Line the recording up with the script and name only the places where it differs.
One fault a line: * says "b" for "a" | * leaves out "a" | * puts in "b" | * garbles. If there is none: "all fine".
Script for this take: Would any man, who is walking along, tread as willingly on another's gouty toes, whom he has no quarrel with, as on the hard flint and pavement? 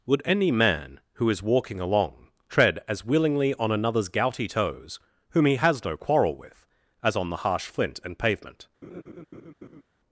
* says "harsh" for "hard"